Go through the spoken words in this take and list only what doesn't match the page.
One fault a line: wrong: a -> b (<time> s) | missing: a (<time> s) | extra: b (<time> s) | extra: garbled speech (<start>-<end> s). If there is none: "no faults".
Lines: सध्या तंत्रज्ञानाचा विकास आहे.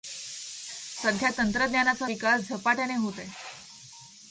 extra: झपाट्याने होत (2.5 s)